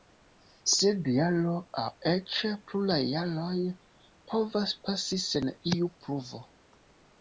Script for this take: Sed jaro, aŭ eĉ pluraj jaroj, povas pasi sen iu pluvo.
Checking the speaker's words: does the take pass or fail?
pass